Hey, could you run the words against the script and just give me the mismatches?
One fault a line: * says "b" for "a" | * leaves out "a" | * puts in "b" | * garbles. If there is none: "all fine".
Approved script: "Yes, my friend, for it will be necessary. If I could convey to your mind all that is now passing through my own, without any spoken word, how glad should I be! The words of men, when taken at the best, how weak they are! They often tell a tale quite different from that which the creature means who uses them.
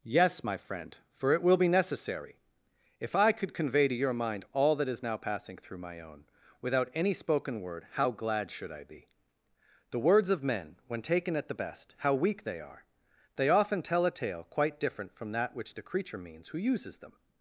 all fine